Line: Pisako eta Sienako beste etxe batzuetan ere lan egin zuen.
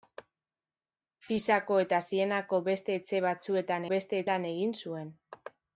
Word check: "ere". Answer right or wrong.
wrong